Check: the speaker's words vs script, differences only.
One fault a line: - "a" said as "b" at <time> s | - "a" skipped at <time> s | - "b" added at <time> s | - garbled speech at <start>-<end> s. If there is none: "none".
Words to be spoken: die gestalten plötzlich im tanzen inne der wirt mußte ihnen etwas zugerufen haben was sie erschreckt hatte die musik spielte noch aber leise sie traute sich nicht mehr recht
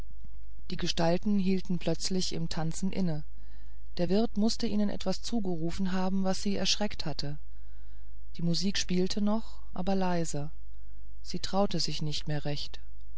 - "hielten" added at 1.4 s